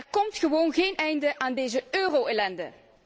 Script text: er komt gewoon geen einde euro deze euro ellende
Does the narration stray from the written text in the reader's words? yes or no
yes